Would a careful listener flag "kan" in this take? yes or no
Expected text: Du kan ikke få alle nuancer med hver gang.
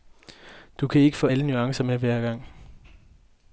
no